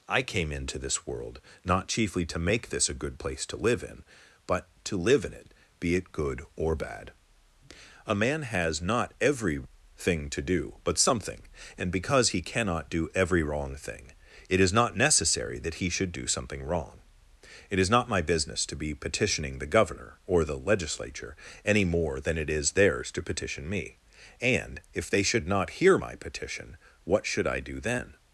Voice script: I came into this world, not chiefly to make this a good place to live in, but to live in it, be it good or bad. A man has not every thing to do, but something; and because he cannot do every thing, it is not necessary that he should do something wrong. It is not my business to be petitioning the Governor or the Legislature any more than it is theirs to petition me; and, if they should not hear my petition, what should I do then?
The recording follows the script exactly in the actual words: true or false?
false